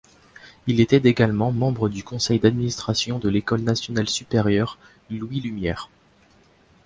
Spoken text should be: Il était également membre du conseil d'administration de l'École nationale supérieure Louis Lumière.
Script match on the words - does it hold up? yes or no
yes